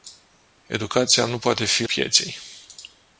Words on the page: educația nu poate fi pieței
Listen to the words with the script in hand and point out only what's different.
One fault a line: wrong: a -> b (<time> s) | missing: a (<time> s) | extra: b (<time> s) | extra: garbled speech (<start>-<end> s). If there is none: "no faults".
no faults